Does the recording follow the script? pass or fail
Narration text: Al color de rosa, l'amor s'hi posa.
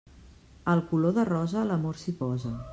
pass